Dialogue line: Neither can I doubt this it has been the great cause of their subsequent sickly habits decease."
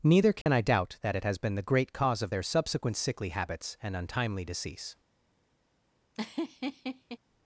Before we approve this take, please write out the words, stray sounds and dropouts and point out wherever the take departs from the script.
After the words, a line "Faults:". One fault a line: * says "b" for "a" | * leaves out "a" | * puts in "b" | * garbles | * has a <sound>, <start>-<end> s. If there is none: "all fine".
Neither can I doubt that it has been the great cause of their subsequent sickly habits and untimely decease."
Faults:
* has a dropout, 0.4-0.5 s
* says "that" for "this"
* puts in "and untimely"
* has a laugh, 6.1-7.2 s